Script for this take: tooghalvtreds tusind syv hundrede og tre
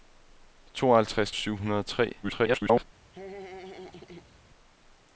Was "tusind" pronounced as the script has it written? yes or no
no